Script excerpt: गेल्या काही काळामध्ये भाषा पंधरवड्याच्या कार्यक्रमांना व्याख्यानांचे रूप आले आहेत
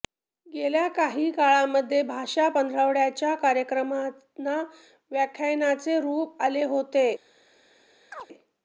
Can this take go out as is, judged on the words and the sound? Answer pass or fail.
fail